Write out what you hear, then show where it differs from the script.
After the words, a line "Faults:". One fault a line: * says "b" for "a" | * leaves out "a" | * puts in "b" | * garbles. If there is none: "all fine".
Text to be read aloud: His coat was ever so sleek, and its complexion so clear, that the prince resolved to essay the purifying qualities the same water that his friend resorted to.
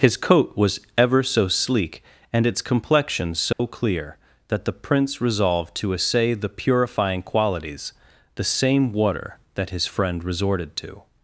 His coat was ever so sleek, and its complexion so clear, that the prince resolved to essay the purifying qualities the same water that his friend resorted to.
Faults:
all fine